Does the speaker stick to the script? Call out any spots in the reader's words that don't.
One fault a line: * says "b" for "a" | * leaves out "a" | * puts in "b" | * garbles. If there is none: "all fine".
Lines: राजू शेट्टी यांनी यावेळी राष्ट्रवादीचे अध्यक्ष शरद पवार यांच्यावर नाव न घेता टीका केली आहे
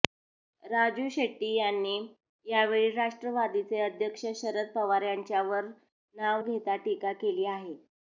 * leaves out "न"